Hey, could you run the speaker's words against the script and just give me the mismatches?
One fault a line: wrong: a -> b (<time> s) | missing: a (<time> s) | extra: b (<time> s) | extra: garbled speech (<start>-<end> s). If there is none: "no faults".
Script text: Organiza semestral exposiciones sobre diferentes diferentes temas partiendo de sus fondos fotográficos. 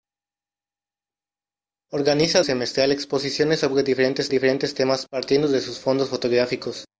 no faults